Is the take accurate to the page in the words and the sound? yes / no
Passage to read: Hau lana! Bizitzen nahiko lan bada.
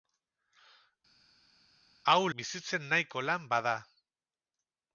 no